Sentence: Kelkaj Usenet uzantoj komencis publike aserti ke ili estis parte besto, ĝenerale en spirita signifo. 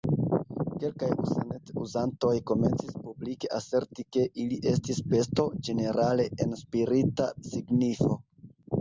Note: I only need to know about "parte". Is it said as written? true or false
false